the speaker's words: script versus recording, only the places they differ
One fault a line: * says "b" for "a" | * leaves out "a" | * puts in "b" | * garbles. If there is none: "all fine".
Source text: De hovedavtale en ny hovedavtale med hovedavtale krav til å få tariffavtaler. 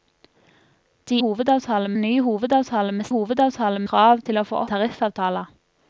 all fine